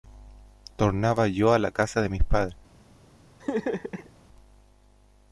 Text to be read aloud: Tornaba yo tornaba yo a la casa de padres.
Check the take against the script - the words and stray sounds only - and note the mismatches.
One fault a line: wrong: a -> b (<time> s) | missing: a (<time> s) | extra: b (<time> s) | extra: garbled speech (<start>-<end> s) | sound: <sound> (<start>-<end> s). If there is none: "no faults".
missing: tornaba yo (1.5 s)
extra: mis (2.1 s)
sound: laugh (3.4-4.1 s)